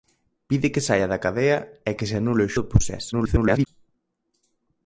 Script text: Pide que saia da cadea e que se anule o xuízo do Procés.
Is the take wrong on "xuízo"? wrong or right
wrong